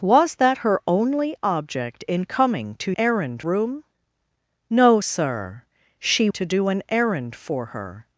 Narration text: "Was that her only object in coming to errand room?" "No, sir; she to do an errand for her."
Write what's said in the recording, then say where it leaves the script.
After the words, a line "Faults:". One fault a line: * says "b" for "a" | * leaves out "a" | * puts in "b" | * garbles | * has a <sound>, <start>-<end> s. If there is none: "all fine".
"Was that her only object in coming to errand room?" "No, sir; she to do an errand for her."
Faults:
all fine